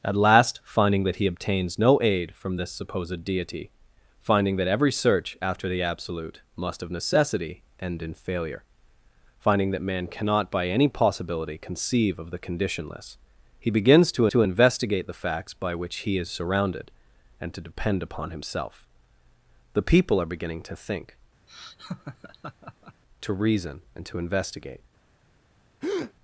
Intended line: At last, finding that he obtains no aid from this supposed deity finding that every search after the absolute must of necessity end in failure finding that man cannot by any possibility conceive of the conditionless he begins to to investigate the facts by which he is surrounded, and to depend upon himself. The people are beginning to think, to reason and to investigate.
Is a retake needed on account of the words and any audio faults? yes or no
yes